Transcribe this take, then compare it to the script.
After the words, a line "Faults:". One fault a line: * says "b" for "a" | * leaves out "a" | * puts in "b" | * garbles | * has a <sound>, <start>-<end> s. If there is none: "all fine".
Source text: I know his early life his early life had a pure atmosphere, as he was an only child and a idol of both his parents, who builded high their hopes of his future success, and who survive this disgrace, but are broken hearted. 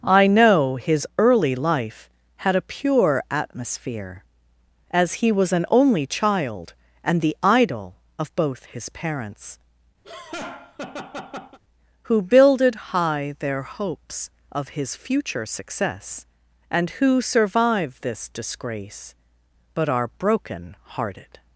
I know his early life had a pure atmosphere, as he was an only child and the idol of both his parents, who builded high their hopes of his future success, and who survive this disgrace, but are broken hearted.
Faults:
* leaves out "his early life"
* says "the" for "a"
* has a laugh, 10.0-11.6 s